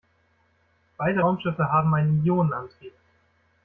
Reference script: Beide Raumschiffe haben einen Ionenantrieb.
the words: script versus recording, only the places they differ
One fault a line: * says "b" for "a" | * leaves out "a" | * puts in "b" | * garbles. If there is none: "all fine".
all fine